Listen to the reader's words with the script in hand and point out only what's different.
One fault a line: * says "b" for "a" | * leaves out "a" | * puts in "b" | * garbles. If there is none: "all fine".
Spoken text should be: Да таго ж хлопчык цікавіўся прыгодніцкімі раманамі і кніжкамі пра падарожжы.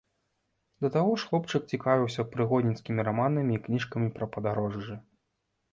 all fine